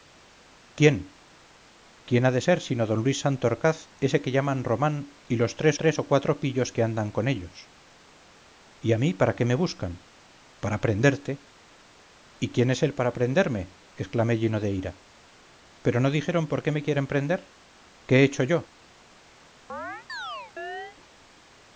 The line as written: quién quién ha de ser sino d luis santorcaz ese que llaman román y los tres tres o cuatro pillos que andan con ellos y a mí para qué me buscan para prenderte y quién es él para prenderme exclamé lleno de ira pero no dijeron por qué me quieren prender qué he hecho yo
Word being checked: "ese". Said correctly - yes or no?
yes